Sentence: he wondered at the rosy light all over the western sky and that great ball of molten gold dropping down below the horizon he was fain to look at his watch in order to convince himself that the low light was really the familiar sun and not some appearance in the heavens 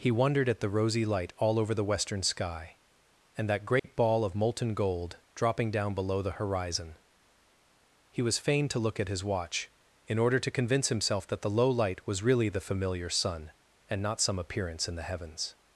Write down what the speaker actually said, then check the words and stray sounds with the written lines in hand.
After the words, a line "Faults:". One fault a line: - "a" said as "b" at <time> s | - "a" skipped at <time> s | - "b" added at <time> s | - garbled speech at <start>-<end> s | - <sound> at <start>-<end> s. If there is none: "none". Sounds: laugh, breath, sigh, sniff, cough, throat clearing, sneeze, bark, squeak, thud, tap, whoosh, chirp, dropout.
he wondered at the rosy light all over the western sky and that great ball of molten gold dropping down below the horizon he was fain to look at his watch in order to convince himself that the low light was really the familiar sun and not some appearance in the heavens
Faults:
- dropout at 3.8-3.8 s